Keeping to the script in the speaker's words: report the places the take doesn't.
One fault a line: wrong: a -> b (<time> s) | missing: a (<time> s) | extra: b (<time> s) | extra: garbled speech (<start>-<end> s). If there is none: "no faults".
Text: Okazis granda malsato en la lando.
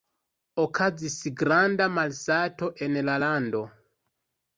no faults